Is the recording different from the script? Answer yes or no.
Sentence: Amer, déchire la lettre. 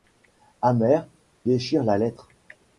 no